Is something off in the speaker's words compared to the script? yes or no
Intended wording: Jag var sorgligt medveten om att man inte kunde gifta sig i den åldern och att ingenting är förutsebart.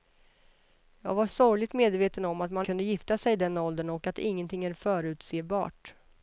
yes